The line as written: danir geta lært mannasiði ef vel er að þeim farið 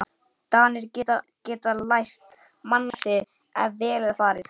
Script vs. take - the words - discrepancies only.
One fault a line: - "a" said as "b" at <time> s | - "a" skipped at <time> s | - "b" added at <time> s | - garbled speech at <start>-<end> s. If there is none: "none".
- "þeim" skipped at 4.2 s